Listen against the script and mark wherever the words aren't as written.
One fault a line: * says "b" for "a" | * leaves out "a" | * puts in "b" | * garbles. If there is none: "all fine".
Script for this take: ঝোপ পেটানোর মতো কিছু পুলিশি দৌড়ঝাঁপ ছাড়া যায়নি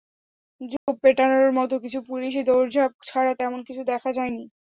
* puts in "তেমন কিছু দেখা"